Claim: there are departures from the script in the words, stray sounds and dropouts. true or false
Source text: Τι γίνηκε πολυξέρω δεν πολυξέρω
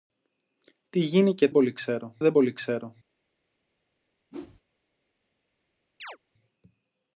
true